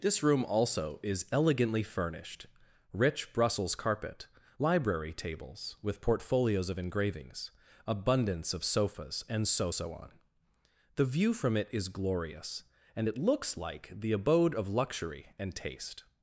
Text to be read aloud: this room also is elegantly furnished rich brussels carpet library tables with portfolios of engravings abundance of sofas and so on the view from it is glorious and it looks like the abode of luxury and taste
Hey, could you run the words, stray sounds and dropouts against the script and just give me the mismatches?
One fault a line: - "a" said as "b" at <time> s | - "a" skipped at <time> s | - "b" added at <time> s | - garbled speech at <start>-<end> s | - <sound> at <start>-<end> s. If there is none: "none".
- "so" added at 9.7 s